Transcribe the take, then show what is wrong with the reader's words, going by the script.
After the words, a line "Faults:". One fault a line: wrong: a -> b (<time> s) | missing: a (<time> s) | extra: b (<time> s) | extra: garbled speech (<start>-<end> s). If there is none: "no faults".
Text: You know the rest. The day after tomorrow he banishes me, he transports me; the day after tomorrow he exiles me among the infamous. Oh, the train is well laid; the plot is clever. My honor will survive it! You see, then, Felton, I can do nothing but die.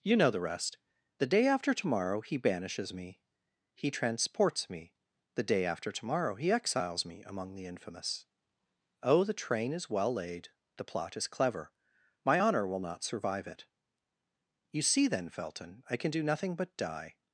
You know the rest. The day after tomorrow he banishes me, he transports me; the day after tomorrow he exiles me among the infamous. Oh, the train is well laid; the plot is clever. My honor will not survive it! You see, then, Felton, I can do nothing but die.
Faults:
extra: not (12.8 s)